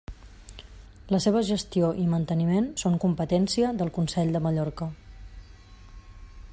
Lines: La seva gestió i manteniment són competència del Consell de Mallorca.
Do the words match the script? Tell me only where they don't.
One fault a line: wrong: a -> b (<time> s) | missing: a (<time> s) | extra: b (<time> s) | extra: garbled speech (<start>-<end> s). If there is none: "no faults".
no faults